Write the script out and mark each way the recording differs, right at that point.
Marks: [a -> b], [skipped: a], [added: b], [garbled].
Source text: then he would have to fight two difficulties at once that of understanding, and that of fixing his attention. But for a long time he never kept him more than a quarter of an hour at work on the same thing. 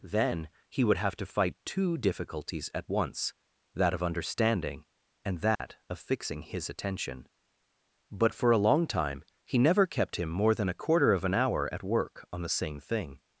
then he would have to fight two difficulties at once that of understanding, and that of fixing his attention. But for a long time he never kept him more than a quarter of an hour at work on the same thing.